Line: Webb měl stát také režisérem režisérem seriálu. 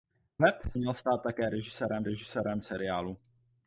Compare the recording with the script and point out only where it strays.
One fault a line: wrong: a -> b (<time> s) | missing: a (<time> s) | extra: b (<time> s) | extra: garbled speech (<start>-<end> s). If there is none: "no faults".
no faults